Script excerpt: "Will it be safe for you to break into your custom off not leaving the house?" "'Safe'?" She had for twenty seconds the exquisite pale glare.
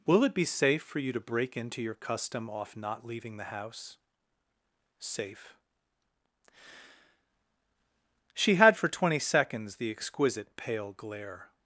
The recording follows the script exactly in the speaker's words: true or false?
true